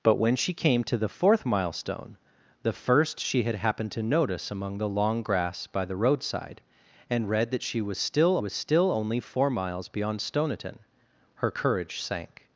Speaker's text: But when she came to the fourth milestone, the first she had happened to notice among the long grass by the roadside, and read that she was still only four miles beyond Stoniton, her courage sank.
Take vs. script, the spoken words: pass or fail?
fail